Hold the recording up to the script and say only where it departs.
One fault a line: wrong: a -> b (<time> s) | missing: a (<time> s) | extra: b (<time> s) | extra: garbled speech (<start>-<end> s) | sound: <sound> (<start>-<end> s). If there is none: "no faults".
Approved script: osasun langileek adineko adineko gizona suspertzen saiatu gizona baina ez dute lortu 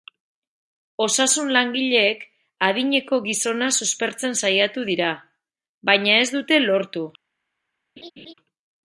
missing: adineko (3.2 s)
wrong: gizona -> dira (4.9 s)
sound: laugh (8.0-8.3 s)